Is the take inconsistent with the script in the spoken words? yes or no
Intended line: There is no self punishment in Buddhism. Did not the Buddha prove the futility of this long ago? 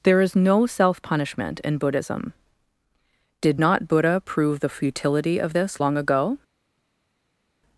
yes